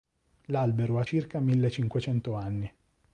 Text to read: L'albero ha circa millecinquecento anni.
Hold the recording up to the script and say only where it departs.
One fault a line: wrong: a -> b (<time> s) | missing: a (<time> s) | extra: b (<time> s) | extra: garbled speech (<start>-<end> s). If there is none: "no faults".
no faults